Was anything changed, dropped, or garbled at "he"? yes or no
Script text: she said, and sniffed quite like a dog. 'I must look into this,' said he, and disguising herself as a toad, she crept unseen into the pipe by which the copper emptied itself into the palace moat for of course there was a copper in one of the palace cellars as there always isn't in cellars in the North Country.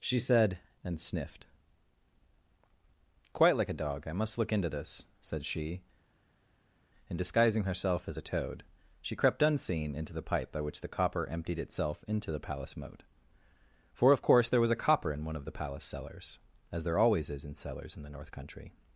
yes